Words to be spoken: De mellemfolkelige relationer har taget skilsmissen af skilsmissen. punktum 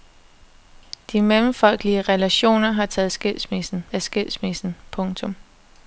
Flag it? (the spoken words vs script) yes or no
no